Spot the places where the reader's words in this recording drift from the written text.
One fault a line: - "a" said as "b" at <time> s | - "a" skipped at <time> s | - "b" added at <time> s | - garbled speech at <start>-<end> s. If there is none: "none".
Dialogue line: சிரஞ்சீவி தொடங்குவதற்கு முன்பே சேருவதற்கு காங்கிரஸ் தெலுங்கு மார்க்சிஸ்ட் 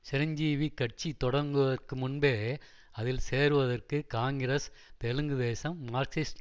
- "கட்சி" added at 0.7 s
- "அதில்" added at 2.9 s
- "தேசம்" added at 5.4 s